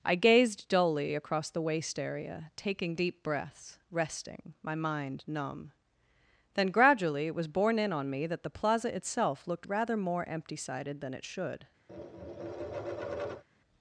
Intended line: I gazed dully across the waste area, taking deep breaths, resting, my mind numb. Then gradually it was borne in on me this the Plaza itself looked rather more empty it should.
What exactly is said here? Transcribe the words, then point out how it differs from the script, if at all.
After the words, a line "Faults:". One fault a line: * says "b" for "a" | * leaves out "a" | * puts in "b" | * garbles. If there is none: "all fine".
I gazed dully across the waste area, taking deep breaths, resting, my mind numb. Then gradually it was borne in on me that the Plaza itself looked rather more empty sided than it should.
Faults:
* says "that" for "this"
* puts in "sided than"